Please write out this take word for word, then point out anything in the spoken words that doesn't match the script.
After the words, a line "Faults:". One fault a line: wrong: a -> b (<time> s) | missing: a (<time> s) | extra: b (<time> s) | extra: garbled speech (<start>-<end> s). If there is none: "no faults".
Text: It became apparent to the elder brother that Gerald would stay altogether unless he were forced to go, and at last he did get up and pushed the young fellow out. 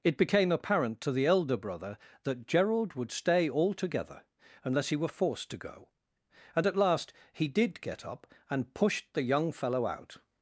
It became apparent to the elder brother that Gerald would stay altogether unless he were forced to go, and at last he did get up and pushed the young fellow out.
Faults:
no faults